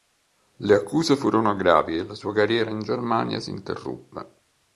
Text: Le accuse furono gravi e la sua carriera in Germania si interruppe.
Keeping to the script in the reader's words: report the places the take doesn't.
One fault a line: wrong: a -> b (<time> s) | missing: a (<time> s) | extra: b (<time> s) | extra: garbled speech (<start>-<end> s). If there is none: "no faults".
no faults